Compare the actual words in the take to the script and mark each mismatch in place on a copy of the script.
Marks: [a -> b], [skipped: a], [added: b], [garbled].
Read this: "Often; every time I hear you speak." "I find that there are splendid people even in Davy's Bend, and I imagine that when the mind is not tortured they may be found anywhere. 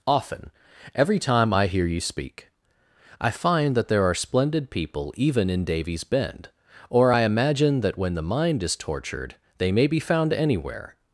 "Often; every time I hear you speak." "I find that there are splendid people even in Davy's Bend, [and -> or] I imagine that when the mind is [skipped: not] tortured they may be found anywhere.